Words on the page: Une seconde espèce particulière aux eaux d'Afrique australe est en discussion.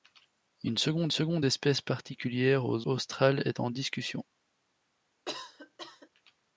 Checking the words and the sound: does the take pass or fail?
fail